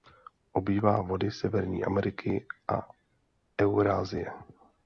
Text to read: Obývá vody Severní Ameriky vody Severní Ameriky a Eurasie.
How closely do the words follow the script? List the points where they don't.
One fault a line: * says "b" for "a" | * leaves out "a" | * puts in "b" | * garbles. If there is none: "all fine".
* leaves out "vody Severní Ameriky"